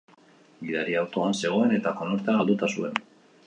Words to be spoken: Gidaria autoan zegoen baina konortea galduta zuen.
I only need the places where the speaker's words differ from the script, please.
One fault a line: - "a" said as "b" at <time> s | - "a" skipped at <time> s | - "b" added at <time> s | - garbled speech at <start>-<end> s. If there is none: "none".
- "baina" said as "eta" at 1.8 s